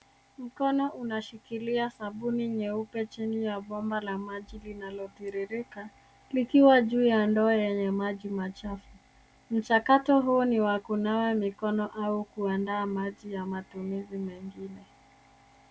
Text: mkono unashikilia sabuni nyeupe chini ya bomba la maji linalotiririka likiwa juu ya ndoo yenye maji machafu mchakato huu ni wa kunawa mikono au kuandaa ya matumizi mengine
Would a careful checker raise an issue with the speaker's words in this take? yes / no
yes